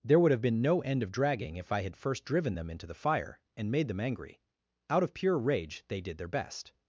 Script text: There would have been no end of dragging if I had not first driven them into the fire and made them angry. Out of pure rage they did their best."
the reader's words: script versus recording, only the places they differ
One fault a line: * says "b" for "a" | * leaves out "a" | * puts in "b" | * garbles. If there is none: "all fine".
* leaves out "not"